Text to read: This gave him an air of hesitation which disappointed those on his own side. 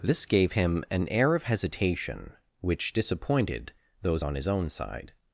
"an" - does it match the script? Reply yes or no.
yes